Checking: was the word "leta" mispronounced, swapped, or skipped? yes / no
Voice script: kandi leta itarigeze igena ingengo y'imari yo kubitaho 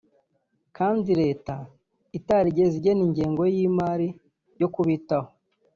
no